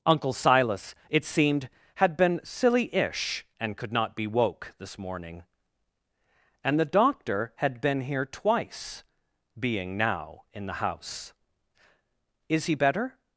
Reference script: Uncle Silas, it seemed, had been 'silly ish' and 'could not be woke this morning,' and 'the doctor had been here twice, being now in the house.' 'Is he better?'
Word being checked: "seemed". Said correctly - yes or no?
yes